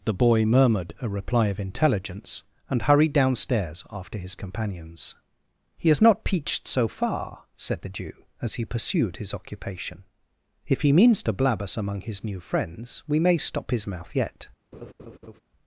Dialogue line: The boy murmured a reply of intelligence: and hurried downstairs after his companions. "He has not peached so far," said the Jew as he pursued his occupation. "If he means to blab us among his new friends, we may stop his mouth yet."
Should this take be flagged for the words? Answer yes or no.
no